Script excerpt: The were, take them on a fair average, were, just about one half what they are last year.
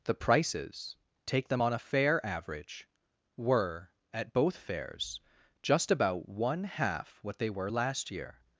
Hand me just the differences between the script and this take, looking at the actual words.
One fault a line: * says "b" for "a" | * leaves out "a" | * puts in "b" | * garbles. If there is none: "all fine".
* says "prices" for "were"
* puts in "at both fairs"
* says "were" for "are"